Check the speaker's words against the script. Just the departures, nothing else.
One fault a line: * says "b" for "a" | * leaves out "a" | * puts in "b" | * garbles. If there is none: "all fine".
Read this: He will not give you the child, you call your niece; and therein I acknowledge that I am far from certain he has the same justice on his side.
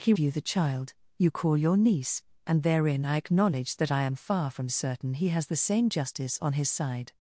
* leaves out "will not give"